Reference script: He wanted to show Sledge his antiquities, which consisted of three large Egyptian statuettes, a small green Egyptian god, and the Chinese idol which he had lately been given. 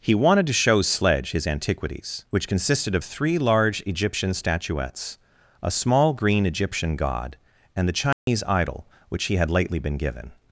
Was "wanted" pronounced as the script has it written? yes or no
yes